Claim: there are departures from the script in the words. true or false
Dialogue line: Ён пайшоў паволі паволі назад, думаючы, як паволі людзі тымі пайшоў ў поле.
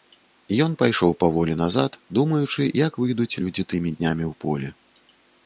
true